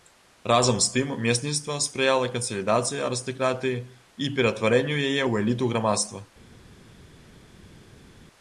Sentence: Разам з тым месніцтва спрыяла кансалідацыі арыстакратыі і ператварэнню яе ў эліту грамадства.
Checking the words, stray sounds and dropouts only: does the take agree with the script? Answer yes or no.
yes